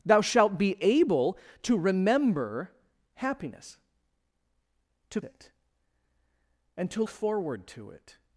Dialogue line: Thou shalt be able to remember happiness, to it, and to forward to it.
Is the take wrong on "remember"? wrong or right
right